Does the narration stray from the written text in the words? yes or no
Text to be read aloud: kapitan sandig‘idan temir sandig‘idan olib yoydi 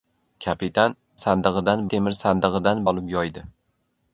no